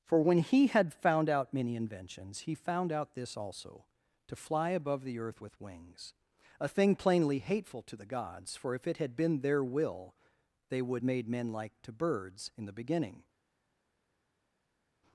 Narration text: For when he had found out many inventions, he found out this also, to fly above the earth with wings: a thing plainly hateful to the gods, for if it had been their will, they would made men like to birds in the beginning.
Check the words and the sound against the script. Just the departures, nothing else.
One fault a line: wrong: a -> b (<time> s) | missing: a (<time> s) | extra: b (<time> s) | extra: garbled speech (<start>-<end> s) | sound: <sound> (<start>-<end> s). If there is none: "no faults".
no faults